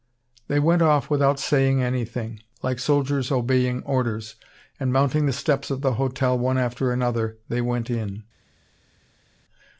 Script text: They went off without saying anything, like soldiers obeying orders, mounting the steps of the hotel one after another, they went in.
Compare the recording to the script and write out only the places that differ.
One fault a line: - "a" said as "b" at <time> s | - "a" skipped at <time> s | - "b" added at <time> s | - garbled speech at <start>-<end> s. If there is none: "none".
- "and" added at 4.8 s